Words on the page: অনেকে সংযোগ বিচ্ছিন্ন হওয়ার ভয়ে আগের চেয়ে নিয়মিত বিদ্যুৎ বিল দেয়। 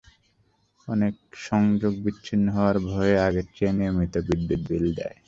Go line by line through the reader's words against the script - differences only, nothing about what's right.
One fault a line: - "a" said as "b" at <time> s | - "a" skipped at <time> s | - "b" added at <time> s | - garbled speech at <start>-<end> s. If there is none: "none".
none